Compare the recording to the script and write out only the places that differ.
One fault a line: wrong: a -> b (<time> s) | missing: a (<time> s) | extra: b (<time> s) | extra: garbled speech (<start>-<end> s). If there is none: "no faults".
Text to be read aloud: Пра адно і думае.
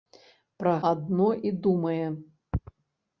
no faults